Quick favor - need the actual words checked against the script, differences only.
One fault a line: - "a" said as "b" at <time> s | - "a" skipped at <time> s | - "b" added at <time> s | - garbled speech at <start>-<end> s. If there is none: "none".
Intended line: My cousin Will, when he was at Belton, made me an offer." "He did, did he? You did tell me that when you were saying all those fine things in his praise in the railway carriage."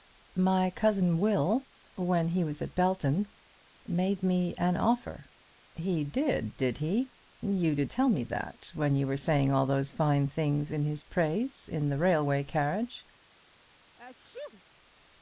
none